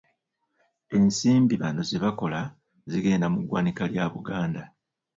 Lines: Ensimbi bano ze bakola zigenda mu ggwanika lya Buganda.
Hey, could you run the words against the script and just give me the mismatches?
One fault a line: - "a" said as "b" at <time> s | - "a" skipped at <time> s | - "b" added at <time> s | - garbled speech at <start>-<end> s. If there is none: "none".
none